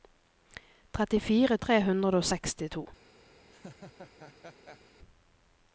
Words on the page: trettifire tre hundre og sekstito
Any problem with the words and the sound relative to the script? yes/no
yes